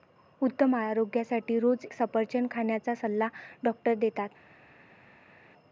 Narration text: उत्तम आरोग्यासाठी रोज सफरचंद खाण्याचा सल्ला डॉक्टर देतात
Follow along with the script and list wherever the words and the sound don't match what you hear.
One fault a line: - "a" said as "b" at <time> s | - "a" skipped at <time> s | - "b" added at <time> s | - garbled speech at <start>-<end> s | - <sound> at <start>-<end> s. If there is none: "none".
none